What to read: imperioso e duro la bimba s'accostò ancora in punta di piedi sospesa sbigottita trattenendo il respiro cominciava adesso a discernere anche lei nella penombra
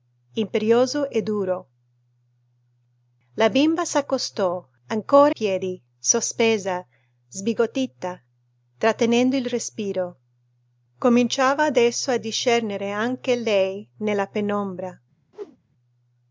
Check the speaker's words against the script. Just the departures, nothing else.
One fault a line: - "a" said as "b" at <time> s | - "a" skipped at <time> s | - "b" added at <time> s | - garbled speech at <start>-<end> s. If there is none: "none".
- "in punta di" skipped at 5.3 s